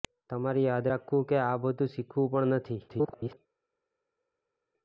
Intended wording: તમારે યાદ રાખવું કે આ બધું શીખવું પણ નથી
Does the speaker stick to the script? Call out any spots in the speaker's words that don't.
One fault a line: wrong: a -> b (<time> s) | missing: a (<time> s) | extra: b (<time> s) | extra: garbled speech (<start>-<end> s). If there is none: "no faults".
extra: garbled speech (2.9-3.4 s)